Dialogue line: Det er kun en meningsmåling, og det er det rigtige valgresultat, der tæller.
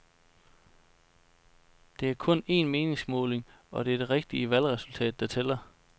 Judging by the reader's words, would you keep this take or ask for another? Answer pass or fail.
pass